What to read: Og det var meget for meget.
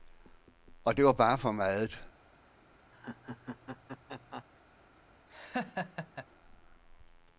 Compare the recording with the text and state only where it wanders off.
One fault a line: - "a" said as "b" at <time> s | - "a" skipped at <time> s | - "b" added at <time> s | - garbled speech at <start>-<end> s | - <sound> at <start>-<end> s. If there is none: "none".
- "meget" said as "bare" at 1.1 s
- laugh at 2.9-4.4 s
- laugh at 5.3-6.3 s